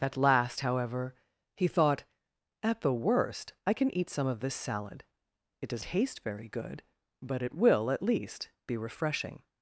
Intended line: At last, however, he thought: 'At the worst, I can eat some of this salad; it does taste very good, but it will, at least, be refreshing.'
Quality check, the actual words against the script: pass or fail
pass